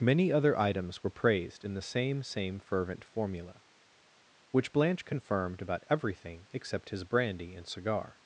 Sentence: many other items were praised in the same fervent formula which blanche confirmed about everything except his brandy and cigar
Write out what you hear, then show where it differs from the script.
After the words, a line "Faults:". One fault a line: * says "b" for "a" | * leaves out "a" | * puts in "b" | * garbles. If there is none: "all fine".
many other items were praised in the same same fervent formula which blanche confirmed about everything except his brandy and cigar
Faults:
* puts in "same"